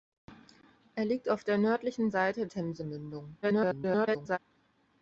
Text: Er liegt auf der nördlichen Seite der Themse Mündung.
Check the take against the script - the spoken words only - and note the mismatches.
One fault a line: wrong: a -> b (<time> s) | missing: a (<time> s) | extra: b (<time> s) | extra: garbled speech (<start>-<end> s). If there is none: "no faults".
missing: der (2.5 s)
extra: garbled speech (3.4-4.4 s)